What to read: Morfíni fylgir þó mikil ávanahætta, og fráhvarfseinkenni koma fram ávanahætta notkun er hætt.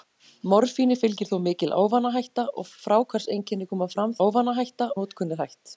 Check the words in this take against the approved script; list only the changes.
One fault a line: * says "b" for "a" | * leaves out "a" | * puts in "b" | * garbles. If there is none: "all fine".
all fine